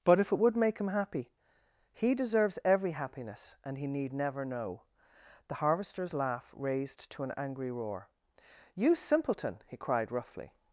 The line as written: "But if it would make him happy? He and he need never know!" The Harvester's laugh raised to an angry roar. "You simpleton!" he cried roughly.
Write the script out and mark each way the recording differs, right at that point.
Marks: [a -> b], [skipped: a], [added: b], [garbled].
"But if it would make him happy? He [added: deserves every happiness] and he need never know!" The Harvester's laugh raised to an angry roar. "You simpleton!" he cried roughly.